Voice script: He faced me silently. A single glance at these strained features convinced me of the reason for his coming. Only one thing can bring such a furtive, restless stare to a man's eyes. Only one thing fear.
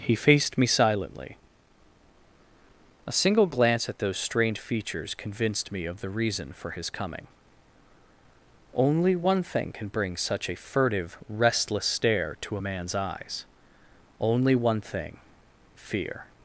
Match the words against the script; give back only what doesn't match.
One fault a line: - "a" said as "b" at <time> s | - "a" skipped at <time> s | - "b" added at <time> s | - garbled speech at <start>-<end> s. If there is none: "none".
- "these" said as "those" at 4.0 s